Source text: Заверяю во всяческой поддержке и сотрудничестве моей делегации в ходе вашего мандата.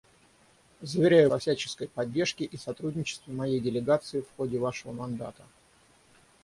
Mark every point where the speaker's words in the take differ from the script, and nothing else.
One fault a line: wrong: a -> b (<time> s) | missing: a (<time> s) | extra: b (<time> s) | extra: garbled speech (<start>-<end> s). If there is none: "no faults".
no faults